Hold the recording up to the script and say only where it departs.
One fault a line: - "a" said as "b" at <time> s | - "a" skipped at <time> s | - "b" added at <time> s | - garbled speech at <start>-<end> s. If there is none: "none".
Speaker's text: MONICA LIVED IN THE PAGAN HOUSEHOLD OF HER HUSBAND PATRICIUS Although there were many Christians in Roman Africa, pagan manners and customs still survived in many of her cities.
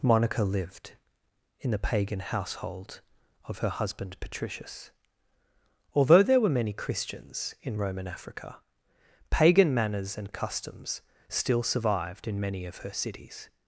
none